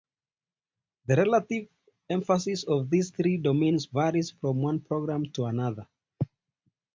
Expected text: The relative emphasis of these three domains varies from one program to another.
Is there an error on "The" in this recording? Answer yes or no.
no